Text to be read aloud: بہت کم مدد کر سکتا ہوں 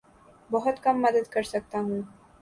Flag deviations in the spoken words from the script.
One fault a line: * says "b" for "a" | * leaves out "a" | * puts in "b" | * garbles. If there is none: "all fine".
all fine